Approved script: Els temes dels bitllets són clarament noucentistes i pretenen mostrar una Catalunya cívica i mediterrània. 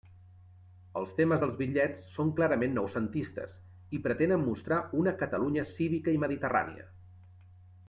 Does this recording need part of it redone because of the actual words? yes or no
no